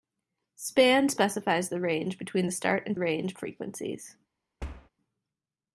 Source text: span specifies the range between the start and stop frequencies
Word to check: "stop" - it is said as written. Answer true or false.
false